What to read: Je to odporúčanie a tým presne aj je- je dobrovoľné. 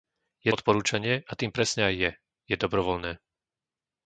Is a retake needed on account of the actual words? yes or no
yes